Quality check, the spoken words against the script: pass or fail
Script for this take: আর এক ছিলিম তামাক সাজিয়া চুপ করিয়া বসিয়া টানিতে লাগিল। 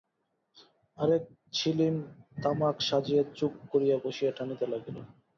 pass